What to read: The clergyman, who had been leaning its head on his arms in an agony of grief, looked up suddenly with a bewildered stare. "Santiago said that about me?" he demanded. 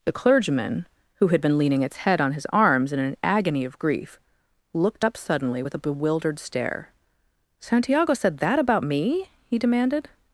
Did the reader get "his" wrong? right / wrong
right